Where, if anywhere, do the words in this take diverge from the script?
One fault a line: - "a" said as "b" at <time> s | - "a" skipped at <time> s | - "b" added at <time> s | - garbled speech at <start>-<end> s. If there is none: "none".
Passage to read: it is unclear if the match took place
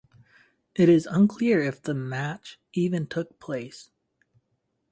- "even" added at 2.7 s